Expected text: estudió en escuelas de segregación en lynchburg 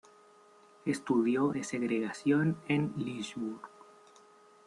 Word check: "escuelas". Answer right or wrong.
wrong